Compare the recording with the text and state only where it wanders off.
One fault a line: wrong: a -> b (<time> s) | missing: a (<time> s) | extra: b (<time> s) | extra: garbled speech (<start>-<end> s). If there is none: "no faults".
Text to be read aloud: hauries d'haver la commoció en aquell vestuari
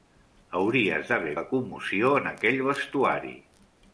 no faults